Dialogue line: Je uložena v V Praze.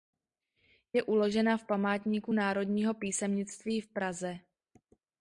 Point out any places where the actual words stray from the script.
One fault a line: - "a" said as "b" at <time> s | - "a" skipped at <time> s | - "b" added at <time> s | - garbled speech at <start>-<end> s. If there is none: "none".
- "Památníku Národního písemnictví" added at 1.6 s